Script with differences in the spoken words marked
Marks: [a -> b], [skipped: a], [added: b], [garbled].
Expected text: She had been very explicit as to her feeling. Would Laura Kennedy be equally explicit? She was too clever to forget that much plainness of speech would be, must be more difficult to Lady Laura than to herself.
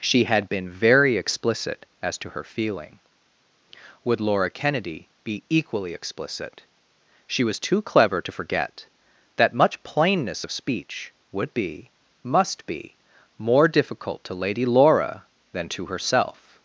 She had been very explicit as to her feeling. Would Laura Kennedy be equally explicit? She was too clever to forget that much plainness of speech would be, must be more difficult to Lady Laura than to herself.